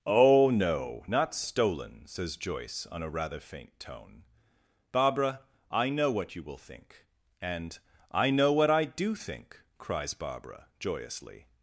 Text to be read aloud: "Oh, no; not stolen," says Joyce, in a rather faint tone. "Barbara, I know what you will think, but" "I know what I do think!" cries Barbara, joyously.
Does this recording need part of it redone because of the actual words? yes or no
yes